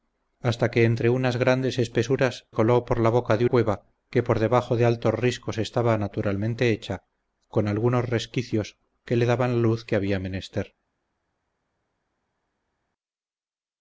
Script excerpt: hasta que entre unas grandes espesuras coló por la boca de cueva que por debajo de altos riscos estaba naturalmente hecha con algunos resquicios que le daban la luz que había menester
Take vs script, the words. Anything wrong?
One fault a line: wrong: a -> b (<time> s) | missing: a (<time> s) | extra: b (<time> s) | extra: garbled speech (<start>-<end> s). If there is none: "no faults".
no faults